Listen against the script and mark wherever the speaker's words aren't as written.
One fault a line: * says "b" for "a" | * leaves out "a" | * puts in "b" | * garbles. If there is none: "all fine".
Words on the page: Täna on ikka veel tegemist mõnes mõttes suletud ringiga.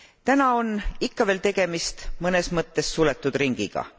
all fine